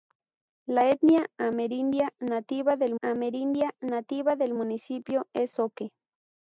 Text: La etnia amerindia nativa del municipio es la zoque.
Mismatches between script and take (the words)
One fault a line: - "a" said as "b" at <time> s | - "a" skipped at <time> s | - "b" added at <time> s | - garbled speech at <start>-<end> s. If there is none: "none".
- "amerindia nativa del" added at 3.0 s
- "la" skipped at 5.6 s